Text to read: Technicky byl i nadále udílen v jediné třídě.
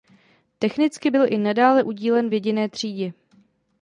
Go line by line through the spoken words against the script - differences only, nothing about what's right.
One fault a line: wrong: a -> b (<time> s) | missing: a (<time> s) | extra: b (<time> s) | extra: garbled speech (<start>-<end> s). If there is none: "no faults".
no faults